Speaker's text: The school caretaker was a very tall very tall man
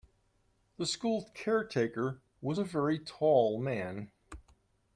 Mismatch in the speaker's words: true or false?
true